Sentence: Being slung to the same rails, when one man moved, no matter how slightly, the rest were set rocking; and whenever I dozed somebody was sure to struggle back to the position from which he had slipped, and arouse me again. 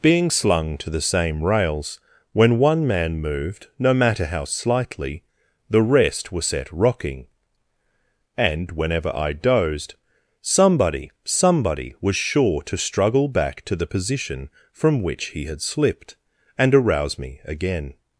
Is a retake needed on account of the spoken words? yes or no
yes